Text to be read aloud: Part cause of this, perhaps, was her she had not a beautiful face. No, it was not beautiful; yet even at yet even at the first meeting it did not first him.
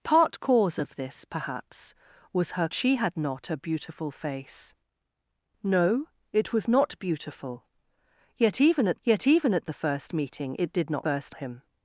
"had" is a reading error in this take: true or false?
false